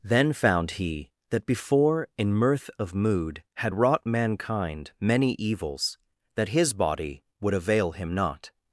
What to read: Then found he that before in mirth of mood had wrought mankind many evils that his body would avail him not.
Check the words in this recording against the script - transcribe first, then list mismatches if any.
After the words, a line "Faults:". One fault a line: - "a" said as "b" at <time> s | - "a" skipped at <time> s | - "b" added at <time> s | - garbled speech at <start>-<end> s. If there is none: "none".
Then found he that before in mirth of mood had wrought mankind many evils that his body would avail him not.
Faults:
none